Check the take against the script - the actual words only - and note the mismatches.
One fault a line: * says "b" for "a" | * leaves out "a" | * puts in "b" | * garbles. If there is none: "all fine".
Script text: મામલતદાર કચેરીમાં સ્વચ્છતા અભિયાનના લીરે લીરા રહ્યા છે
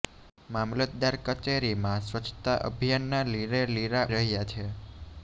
all fine